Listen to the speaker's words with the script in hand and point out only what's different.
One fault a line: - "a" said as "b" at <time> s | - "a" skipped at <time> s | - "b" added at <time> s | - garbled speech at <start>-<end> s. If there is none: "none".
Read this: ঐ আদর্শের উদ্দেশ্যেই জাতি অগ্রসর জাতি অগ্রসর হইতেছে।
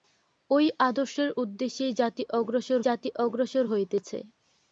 none